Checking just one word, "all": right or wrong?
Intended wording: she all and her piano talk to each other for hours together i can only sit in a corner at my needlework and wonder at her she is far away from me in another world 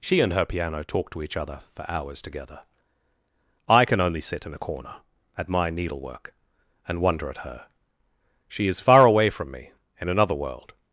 wrong